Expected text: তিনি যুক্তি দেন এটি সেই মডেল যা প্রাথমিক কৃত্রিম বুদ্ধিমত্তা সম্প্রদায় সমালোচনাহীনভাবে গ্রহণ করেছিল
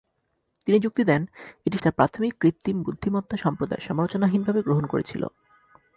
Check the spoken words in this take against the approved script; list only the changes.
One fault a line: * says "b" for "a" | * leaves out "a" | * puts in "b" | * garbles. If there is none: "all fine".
* leaves out "সেই মডেল"